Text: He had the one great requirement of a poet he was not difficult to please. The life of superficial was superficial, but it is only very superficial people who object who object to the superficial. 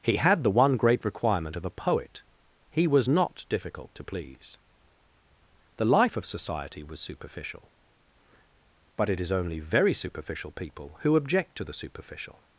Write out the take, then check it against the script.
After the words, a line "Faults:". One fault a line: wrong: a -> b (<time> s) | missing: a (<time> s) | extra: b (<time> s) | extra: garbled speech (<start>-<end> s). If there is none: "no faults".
He had the one great requirement of a poet he was not difficult to please. The life of society was superficial, but it is only very superficial people who object to the superficial.
Faults:
wrong: superficial -> society (6.2 s)
missing: who object (11.6 s)